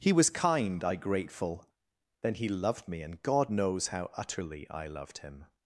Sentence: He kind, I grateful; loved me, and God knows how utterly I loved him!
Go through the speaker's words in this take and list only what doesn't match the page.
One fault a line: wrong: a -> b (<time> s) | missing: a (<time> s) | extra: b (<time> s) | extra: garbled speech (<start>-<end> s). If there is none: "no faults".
extra: was (0.1 s)
extra: then he (2.2 s)